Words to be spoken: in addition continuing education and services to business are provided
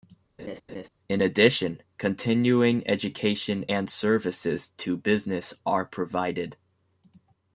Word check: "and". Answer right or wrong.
right